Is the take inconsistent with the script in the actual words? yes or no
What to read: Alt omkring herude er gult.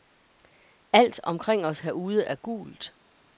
yes